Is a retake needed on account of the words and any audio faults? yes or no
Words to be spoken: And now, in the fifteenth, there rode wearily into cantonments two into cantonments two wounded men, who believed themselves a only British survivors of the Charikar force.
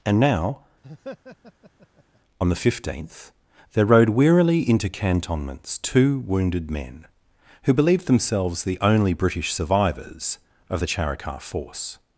yes